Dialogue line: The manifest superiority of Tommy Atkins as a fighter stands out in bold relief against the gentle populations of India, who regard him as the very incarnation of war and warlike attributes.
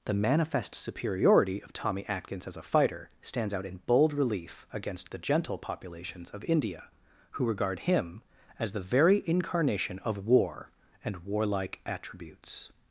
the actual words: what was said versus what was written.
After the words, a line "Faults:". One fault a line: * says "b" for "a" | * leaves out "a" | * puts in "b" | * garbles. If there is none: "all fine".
The manifest superiority of Tommy Atkins as a fighter stands out in bold relief against the gentle populations of India, who regard him as the very incarnation of war and warlike attributes.
Faults:
all fine